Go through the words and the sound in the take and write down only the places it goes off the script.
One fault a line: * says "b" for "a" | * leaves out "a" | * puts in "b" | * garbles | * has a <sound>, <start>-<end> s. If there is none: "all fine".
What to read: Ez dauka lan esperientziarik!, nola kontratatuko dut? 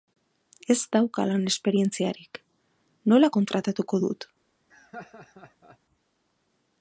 * has a laugh, 4.7-5.8 s